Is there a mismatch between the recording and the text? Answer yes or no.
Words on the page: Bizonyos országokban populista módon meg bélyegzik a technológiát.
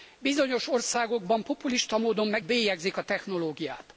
no